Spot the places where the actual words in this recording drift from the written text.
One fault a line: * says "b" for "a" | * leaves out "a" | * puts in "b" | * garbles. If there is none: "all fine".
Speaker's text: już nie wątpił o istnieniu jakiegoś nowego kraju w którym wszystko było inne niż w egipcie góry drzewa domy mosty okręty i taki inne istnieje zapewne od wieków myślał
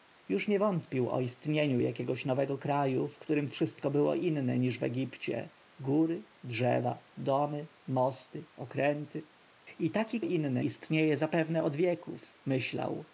all fine